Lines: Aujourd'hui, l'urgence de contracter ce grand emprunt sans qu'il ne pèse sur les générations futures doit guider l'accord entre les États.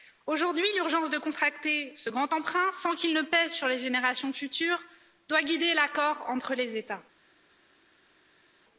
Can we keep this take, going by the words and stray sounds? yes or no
yes